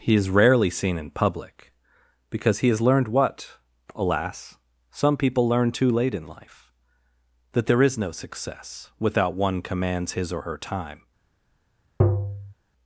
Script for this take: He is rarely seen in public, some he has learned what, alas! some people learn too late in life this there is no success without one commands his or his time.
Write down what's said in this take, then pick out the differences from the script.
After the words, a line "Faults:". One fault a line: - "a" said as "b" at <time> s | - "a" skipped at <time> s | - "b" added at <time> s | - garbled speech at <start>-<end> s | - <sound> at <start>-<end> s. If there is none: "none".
He is rarely seen in public, because he has learned what, alas! some people learn too late in life that there is no success without one commands his or her time.
Faults:
- "some" said as "because" at 2.3 s
- "this" said as "that" at 7.5 s
- "his" said as "her" at 10.4 s
- tap at 12.0-12.5 s